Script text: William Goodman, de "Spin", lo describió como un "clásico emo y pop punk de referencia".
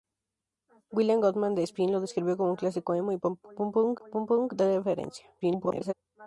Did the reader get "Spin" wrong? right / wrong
right